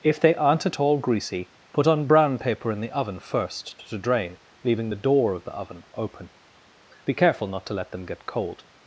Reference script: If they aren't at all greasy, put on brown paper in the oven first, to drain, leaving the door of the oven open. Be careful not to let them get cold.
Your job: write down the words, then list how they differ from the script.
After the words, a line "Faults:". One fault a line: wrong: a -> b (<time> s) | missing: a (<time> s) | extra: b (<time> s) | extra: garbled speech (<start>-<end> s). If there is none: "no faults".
If they aren't at all greasy, put on brown paper in the oven first, to drain, leaving the door of the oven open. Be careful not to let them get cold.
Faults:
no faults